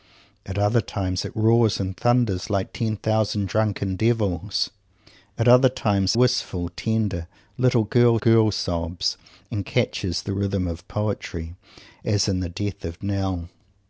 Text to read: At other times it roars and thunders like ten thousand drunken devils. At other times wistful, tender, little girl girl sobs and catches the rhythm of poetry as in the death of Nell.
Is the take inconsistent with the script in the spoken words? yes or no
no